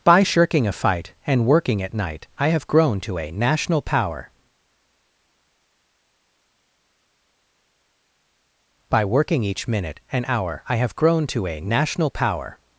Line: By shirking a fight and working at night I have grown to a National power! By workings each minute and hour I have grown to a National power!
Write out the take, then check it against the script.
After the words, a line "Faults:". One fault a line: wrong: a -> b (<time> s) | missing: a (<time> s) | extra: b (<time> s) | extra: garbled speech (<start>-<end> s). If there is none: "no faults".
By shirking a fight and working at night I have grown to a National power! By working each minute and hour I have grown to a National power!
Faults:
wrong: workings -> working (9.1 s)